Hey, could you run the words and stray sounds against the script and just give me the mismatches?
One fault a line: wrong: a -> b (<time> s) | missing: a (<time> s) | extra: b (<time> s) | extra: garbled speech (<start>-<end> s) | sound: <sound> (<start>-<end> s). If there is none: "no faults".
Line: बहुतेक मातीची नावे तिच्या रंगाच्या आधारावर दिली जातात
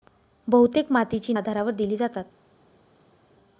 missing: नावे तिच्या रंगाच्या (1.3 s)